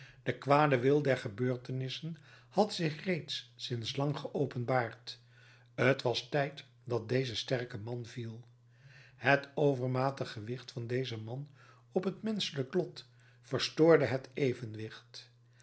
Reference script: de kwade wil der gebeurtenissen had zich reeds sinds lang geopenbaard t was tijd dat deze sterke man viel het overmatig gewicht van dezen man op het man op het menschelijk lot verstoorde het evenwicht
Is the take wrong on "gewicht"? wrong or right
right